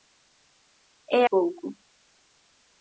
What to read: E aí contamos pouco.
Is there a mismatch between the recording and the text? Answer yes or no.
yes